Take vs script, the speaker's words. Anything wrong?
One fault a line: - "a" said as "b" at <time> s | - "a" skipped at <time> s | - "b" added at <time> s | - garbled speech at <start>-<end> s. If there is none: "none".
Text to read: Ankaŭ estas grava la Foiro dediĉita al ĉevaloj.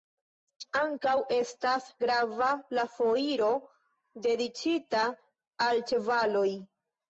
none